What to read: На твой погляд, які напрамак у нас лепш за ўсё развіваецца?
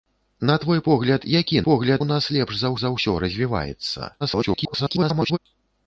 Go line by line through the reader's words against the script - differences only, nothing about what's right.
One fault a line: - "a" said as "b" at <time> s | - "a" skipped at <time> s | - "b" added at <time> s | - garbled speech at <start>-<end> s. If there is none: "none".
- "напрамак" said as "погляд" at 1.7 s
- "за" added at 2.8 s
- garbled speech at 4.2-5.4 s